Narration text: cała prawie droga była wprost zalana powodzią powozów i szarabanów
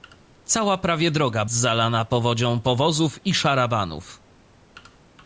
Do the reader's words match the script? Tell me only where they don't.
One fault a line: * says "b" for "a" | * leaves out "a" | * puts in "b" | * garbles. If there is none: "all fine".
* leaves out "była wprost"